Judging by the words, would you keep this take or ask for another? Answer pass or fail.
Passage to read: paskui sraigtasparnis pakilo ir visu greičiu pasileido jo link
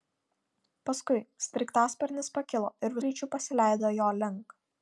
fail